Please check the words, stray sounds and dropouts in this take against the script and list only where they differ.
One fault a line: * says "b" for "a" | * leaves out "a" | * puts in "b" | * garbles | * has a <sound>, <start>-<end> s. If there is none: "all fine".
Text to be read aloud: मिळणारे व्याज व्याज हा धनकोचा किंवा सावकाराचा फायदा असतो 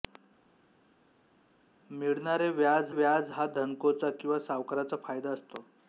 all fine